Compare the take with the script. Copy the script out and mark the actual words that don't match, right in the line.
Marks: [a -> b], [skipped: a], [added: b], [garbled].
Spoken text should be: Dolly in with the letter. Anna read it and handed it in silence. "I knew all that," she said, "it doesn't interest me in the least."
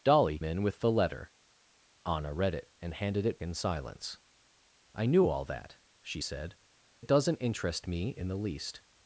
Dolly in with the letter. Anna read it and handed it in silence. "I knew all that," she said, "it doesn't interest me in the least."